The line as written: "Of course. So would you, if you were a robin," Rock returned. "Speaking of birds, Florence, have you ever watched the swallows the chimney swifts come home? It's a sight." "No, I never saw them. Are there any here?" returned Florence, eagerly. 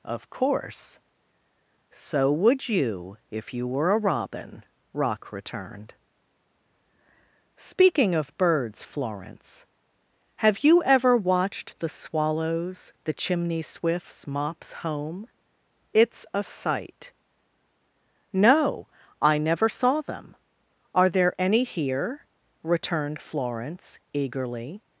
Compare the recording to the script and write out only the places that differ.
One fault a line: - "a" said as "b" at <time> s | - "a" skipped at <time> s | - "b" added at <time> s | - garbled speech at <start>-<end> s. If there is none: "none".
- "come" said as "mops" at 14.2 s